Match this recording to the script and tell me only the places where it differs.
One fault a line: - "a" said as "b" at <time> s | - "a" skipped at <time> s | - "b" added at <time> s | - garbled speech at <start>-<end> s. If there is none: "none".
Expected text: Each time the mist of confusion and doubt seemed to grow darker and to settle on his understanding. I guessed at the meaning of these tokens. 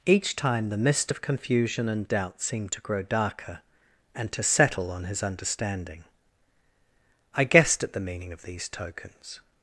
none